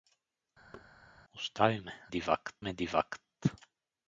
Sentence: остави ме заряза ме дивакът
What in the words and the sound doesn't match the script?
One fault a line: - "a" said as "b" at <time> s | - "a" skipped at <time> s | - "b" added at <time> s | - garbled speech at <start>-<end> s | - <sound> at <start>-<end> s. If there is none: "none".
- thud at 0.7-0.9 s
- "заряза" said as "дивакът" at 2.1 s